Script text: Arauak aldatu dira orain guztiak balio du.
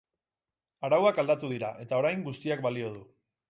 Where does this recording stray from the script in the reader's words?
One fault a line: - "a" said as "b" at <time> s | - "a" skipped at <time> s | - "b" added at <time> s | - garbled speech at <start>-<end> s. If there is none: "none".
- "eta" added at 1.9 s